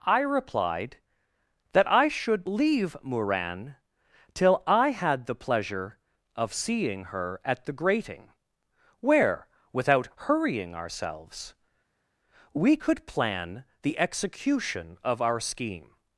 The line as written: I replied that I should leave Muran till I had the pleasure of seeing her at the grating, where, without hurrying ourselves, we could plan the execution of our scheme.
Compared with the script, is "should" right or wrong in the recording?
right